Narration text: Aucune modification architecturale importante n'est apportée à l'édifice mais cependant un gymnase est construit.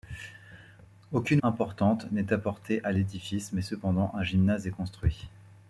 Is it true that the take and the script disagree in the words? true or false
true